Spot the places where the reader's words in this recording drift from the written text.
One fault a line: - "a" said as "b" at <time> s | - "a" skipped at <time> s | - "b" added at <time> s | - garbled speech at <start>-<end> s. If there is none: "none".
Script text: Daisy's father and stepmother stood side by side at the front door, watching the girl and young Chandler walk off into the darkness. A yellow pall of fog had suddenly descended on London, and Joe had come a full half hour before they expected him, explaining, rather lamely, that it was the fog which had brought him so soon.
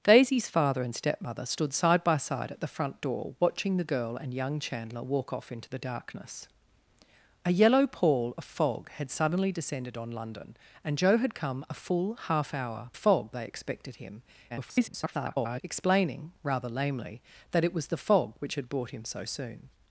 - "before" said as "fog" at 12.9 s
- garbled speech at 14.5-15.6 s